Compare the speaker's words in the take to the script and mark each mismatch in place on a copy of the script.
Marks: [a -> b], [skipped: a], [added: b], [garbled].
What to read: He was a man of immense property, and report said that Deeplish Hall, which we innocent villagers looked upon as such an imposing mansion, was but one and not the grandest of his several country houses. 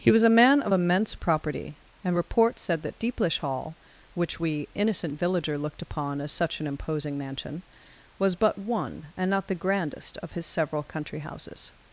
He was a man of immense property, and report said that Deeplish Hall, which we innocent [villagers -> villager] looked upon as such an imposing mansion, was but one and not the grandest of his several country houses.